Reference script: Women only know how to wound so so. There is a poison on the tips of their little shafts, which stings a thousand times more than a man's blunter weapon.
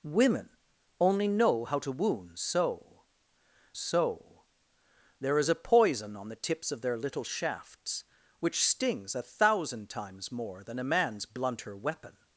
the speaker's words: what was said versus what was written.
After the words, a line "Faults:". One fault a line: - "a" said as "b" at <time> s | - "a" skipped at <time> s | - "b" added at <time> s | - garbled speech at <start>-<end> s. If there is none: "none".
Women only know how to wound so so. There is a poison on the tips of their little shafts, which stings a thousand times more than a man's blunter weapon.
Faults:
none